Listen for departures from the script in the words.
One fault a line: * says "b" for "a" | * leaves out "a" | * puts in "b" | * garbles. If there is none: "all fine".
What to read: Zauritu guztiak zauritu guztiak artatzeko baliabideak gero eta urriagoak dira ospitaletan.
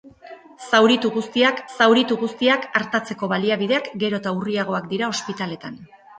all fine